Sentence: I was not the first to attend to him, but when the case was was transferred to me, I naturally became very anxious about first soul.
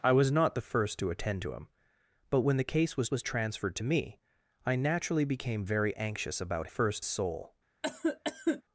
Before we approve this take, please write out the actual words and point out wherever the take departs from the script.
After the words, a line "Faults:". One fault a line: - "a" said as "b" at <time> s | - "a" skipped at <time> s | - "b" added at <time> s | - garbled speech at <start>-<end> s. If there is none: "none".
I was not the first to attend to him, but when the case was was transferred to me, I naturally became very anxious about first soul.
Faults:
none